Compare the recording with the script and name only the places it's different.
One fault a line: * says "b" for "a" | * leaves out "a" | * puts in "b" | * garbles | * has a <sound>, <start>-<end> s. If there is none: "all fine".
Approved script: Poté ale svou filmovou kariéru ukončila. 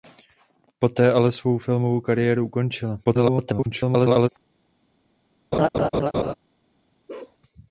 * garbles
* has a laugh, 5.5-6.3 s
* has a bark, 7.1-7.4 s